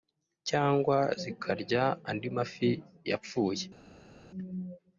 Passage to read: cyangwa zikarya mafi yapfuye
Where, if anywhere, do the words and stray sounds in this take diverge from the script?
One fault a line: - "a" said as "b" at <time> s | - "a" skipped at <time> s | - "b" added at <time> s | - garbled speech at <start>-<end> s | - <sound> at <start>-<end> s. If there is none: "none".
- "andi" added at 2.1 s